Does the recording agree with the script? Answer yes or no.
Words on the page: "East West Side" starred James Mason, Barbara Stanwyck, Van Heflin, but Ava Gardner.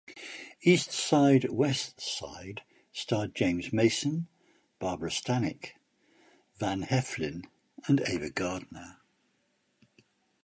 no